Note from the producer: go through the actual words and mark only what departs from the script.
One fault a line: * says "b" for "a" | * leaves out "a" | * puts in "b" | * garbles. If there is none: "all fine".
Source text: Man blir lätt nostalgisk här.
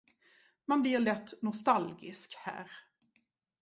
all fine